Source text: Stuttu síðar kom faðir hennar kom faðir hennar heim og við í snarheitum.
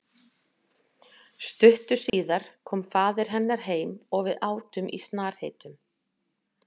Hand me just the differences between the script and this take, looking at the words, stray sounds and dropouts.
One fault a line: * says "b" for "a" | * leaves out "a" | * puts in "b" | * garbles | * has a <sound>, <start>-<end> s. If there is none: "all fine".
* has a dropout, 2.1-2.1 s
* leaves out "kom faðir hennar"
* puts in "átum"